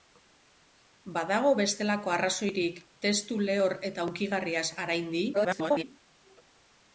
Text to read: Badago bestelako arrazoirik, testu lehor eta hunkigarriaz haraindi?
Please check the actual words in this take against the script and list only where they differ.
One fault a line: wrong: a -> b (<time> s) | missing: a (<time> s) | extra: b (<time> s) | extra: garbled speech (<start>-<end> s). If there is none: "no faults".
extra: garbled speech (5.3-5.8 s)